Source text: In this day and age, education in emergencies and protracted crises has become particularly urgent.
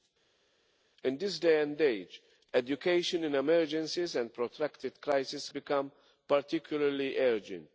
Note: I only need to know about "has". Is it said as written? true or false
false